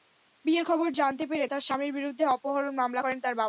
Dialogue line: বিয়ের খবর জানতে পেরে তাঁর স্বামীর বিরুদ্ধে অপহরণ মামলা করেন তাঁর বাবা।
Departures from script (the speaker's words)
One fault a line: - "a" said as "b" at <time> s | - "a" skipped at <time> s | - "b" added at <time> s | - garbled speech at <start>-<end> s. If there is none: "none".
none